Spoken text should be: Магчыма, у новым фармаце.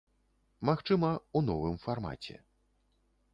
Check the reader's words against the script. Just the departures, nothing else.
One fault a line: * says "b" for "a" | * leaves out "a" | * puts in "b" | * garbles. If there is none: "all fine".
all fine